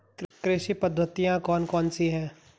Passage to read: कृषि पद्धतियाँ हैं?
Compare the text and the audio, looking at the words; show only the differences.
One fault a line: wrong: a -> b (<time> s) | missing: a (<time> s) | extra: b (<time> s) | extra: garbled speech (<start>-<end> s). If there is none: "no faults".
extra: कौन कौन सी (1.4 s)